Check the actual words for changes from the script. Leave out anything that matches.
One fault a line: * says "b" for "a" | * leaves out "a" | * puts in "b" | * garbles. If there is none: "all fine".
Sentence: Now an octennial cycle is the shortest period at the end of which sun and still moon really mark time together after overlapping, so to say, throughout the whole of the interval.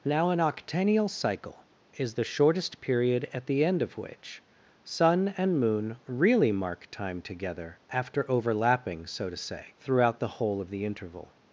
* leaves out "still"